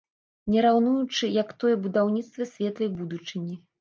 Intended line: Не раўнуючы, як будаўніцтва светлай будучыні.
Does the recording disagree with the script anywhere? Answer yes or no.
yes